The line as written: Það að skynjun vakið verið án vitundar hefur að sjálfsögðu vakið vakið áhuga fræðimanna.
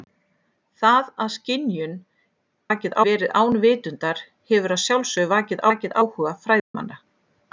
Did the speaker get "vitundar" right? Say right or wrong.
right